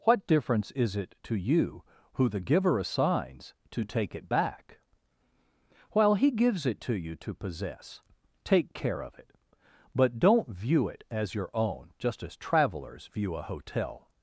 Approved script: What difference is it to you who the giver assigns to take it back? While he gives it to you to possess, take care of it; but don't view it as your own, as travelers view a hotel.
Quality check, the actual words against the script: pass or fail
fail